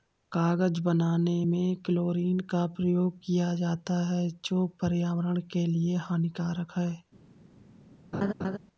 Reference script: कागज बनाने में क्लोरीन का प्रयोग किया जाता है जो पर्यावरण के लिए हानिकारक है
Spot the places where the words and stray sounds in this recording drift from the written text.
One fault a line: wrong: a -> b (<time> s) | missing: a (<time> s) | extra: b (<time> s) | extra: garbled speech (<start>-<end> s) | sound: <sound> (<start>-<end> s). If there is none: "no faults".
sound: laugh (8.1-8.6 s)